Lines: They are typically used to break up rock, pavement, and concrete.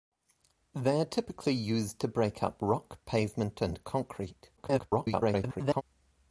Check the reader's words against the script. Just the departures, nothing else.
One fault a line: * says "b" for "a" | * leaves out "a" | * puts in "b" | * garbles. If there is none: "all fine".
* garbles